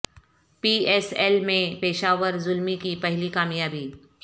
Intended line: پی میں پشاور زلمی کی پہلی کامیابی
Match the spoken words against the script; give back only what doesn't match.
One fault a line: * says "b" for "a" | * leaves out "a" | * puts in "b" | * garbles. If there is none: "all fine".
* puts in "ایس ایل"